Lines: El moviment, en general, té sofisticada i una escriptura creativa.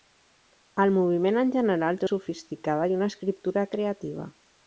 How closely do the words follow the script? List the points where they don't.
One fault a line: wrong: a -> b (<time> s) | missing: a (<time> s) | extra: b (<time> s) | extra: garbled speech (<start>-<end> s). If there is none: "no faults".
no faults